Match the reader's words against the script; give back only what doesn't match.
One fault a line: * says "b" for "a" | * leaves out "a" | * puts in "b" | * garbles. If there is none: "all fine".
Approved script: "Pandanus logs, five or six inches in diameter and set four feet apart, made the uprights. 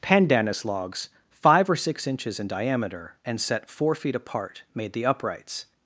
all fine